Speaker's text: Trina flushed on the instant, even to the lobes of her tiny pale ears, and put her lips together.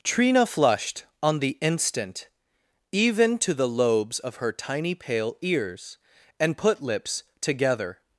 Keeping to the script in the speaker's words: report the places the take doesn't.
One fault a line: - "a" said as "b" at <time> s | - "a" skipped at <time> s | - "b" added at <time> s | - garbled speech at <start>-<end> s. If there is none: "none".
- "her" skipped at 6.8 s